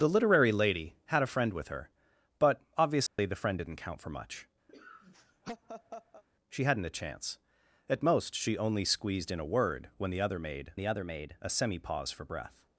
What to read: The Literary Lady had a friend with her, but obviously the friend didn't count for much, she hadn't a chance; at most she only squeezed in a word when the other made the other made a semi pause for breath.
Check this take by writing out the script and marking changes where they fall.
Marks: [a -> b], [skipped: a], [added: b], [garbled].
The Literary Lady had a friend with her, but obviously the friend didn't count for much, she hadn't a chance; at most she only squeezed in a word when the other made the other made a semi pause for breath.